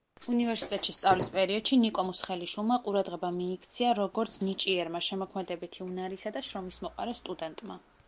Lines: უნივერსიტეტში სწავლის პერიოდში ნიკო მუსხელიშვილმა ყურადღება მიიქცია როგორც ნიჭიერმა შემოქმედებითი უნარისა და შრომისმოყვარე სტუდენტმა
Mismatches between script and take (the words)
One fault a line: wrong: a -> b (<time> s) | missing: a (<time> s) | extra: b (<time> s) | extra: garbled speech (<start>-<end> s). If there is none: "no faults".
no faults